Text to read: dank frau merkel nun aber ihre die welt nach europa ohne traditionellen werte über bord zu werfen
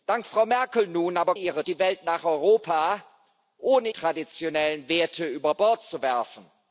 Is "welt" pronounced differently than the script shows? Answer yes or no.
no